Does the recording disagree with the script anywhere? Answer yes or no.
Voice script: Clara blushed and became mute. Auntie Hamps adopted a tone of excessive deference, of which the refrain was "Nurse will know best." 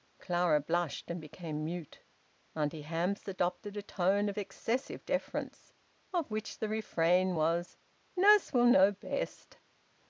no